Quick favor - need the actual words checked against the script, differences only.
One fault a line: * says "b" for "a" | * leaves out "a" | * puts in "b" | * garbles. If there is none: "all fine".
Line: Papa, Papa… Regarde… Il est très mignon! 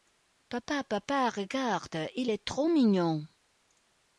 * says "trop" for "très"